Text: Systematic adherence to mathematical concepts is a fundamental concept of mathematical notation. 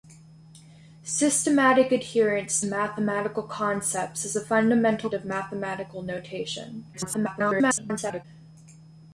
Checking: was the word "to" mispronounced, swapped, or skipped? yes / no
yes